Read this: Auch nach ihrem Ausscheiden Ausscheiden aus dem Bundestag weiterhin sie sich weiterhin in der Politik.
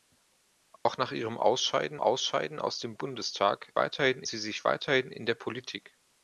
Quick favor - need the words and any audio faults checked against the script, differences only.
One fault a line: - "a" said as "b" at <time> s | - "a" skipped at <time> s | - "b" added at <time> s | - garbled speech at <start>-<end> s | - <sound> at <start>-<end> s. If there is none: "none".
- dropout at 0.8-0.9 s